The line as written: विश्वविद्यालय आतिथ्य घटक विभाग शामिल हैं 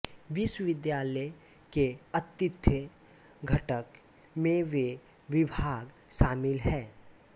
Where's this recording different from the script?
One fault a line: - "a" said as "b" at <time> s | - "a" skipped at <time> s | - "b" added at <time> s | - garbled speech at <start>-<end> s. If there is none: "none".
- "के" added at 1.7 s
- "में वे" added at 4.4 s